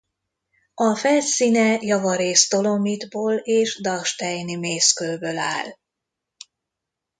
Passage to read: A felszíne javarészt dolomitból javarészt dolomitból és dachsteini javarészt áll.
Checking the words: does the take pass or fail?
fail